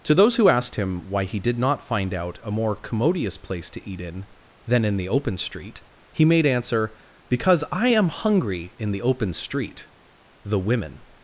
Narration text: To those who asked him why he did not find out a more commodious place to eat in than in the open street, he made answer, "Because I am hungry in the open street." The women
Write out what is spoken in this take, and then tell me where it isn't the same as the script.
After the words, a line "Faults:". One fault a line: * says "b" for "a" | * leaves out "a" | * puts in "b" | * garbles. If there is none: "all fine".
To those who asked him why he did not find out a more commodious place to eat in than in the open street, he made answer, "Because I am hungry in the open street." The women
Faults:
all fine